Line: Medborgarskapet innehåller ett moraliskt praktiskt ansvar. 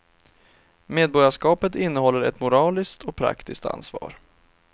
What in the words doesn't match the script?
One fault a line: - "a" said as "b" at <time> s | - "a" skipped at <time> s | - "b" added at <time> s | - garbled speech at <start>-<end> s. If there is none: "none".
- "och" added at 3.0 s